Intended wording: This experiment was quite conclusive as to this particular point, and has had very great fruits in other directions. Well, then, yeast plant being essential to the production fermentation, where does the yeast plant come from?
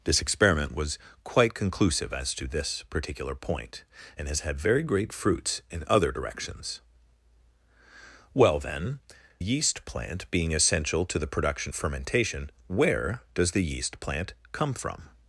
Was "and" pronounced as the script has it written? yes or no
yes